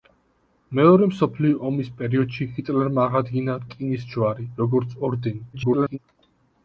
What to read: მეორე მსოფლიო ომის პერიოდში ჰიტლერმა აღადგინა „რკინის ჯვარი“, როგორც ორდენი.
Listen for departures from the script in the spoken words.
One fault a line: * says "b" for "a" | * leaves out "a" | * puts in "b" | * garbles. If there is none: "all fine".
* garbles